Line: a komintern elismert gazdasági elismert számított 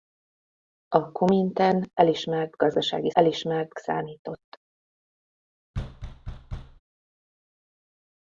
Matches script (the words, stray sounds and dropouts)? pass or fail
fail